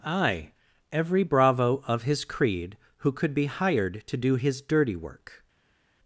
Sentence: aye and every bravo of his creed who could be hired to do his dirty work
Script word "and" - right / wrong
wrong